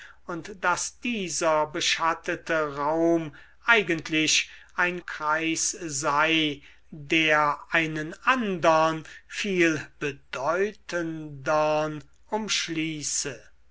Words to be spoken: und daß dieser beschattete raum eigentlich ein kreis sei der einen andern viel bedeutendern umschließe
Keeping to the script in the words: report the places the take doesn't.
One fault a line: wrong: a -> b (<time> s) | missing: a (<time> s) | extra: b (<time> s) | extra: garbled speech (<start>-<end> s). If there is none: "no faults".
no faults